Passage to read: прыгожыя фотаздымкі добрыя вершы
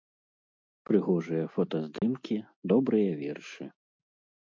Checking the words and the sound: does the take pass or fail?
fail